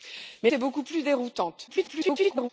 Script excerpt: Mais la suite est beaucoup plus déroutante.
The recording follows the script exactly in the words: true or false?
false